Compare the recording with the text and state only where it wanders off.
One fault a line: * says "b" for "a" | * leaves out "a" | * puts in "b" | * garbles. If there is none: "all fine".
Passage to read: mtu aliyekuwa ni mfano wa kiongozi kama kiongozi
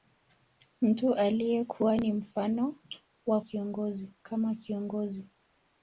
all fine